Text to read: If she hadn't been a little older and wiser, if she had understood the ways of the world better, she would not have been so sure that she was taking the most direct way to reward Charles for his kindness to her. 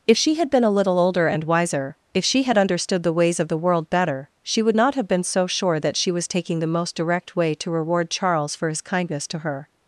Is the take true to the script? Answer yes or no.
no